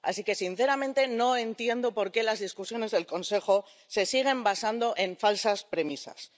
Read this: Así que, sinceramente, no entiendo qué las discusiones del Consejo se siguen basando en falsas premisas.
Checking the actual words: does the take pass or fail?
fail